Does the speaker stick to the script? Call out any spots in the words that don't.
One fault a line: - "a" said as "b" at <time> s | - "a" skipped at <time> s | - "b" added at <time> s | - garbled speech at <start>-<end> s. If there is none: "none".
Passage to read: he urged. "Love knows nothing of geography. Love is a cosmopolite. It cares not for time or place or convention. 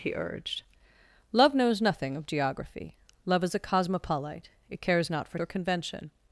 - "time or place" skipped at 5.4 s